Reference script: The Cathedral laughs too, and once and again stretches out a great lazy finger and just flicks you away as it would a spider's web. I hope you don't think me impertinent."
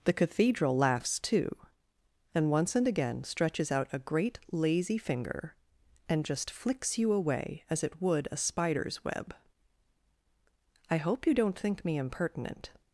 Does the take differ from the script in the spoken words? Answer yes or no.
no